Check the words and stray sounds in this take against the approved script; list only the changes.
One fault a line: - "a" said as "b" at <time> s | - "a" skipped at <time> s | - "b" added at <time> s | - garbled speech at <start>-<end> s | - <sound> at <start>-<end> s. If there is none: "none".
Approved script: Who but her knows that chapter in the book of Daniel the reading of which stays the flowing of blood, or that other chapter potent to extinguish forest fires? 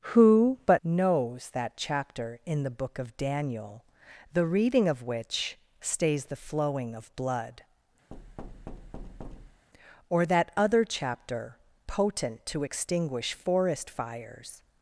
- "her" skipped at 0.8 s
- thud at 8.1-9.7 s